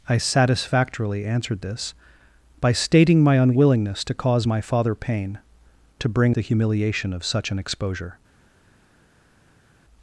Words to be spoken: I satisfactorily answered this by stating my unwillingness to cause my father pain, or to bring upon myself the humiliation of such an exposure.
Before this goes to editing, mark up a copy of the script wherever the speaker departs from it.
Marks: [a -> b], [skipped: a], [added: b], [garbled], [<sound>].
I satisfactorily answered this by stating my unwillingness to cause my father pain, [skipped: or] to bring [skipped: upon myself] the humiliation of such an exposure.